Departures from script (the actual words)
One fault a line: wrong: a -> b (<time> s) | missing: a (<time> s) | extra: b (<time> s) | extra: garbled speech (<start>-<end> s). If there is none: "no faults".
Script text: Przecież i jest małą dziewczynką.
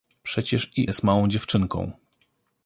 no faults